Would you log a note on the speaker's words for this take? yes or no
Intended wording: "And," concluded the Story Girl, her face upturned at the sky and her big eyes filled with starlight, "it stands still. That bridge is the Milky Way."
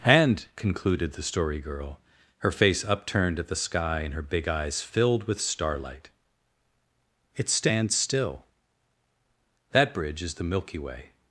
no